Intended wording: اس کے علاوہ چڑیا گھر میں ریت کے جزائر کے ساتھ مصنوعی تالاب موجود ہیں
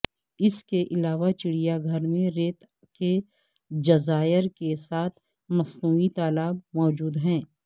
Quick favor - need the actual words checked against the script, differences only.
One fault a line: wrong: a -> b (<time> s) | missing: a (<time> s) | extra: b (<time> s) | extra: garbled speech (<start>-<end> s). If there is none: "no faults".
no faults